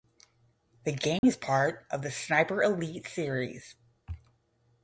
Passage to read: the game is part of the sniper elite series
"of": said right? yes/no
yes